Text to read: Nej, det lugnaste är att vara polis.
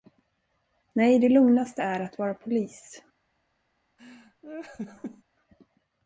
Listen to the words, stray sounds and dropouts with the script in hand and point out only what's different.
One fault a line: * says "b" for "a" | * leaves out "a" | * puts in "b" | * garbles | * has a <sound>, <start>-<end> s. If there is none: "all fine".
* has a laugh, 4.0-5.2 s